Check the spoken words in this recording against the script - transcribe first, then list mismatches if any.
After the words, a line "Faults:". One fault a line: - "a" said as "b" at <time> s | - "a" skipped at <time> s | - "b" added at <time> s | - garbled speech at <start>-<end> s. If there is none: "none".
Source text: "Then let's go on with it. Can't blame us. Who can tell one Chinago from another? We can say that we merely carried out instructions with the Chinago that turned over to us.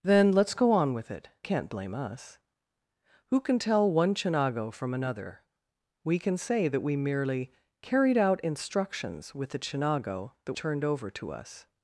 "Then let's go on with it. Can't blame us. Who can tell one Chinago from another? We can say that we merely carried out instructions with the Chinago that turned over to us.
Faults:
none